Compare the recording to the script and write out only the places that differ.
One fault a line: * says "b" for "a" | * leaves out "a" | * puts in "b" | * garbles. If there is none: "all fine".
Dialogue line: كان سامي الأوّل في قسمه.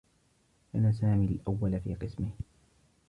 all fine